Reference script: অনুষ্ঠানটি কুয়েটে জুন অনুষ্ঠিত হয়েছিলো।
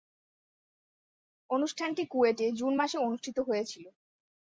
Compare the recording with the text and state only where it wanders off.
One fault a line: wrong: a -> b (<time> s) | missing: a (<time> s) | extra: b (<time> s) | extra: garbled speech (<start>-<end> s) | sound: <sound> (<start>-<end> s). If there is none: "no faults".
extra: মাসে (2.7 s)